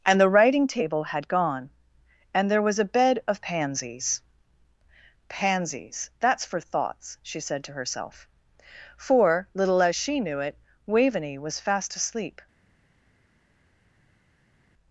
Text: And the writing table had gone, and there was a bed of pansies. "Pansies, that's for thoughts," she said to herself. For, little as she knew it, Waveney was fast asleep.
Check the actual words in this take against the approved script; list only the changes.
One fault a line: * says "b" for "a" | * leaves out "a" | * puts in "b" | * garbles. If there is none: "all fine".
all fine